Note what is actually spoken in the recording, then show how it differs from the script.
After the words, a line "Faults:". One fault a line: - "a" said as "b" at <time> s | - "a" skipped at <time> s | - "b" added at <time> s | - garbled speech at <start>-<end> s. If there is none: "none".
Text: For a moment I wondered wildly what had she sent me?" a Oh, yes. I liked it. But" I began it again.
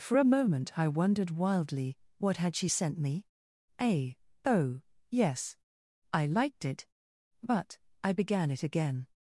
For a moment I wondered wildly what had she sent me?" a Oh, yes. I liked it. But" I began it again.
Faults:
none